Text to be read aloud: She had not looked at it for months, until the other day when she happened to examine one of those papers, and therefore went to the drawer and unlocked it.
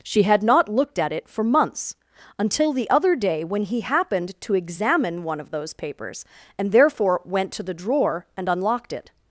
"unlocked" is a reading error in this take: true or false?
false